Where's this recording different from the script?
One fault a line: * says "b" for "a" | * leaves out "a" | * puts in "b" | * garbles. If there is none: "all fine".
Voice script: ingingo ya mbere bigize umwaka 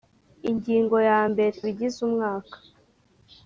all fine